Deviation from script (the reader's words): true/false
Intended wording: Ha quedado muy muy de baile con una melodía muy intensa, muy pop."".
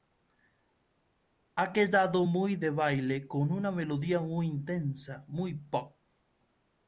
true